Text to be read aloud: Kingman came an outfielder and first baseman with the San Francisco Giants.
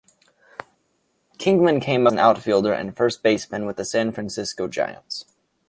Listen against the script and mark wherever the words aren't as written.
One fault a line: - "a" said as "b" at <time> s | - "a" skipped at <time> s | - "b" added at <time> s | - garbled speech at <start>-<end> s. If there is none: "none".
none